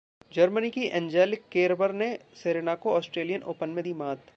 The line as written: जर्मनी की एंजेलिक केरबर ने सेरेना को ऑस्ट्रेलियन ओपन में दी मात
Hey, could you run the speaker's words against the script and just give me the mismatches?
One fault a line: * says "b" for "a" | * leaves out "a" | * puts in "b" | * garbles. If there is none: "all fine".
all fine